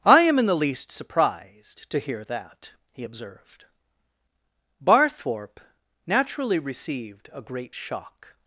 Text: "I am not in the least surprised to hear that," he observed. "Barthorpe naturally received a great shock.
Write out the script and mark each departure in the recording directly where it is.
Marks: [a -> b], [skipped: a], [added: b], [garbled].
"I am [skipped: not] in the least surprised to hear that," he observed. "Barthorpe naturally received a great shock.